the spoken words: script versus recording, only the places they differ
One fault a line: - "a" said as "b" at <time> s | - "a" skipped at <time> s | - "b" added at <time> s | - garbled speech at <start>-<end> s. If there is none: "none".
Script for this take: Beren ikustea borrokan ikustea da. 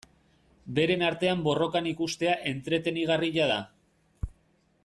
- "ikustea" said as "artean" at 1.1 s
- "entretenigarria" added at 2.5 s